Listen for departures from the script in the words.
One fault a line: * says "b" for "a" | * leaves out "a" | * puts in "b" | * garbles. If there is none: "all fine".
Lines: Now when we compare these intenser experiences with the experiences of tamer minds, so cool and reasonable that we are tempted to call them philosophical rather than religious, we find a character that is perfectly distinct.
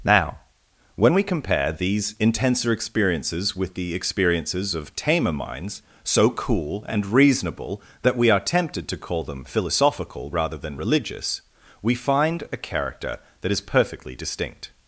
all fine